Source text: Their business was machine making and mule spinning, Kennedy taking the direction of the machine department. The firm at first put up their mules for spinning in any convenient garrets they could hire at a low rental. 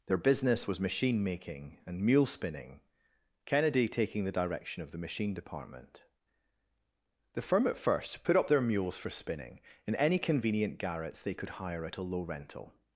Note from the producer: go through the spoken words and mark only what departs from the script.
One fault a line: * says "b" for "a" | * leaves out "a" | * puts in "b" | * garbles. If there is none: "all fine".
all fine